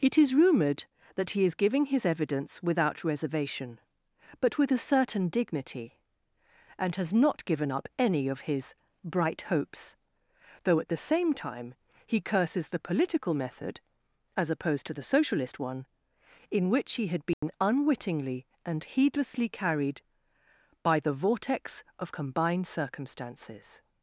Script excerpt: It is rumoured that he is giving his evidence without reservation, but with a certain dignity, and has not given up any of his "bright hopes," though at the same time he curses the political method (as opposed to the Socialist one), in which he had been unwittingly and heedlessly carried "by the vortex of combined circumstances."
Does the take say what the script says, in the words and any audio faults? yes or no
no